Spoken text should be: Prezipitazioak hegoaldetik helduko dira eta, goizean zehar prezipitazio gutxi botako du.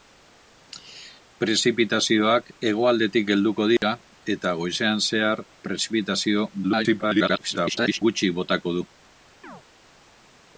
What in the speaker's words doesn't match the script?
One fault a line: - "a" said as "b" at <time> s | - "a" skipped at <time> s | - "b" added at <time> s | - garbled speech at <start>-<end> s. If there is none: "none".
- garbled speech at 6.6-8.0 s